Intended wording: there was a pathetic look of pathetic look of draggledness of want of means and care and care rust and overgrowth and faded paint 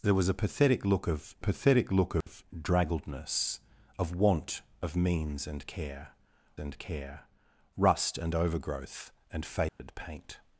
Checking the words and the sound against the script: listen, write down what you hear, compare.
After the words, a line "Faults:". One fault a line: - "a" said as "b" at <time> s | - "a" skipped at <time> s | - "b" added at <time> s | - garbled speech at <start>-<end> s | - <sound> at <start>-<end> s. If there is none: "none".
there was a pathetic look of pathetic look of draggledness of want of means and care and care rust and overgrowth and faded paint
Faults:
- dropout at 2.2-2.3 s
- dropout at 9.7-9.8 s